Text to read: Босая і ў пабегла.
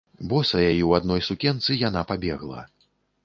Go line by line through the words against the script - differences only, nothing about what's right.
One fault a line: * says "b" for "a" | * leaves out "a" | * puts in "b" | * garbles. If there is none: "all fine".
* puts in "адной сукенцы яна"